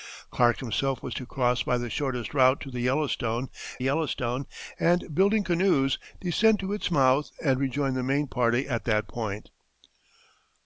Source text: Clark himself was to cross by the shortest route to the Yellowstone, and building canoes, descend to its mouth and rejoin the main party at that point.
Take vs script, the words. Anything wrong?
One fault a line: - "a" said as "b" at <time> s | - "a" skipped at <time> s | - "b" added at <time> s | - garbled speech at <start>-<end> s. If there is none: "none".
- "Yellowstone" added at 3.8 s